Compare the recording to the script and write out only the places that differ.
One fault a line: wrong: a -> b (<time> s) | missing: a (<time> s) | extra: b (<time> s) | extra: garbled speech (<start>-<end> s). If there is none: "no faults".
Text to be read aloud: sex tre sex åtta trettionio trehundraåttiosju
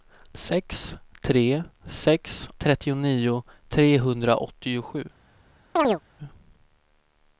missing: åtta (2.5 s)